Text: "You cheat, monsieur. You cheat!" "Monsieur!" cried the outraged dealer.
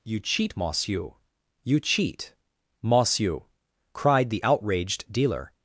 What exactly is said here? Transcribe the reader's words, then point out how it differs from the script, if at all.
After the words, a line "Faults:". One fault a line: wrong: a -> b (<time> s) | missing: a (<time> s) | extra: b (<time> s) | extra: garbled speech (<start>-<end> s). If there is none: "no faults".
"You cheat, monsieur. You cheat!" "Monsieur!" cried the outraged dealer.
Faults:
no faults